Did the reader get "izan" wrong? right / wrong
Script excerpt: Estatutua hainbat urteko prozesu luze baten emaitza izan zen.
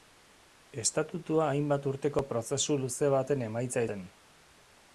wrong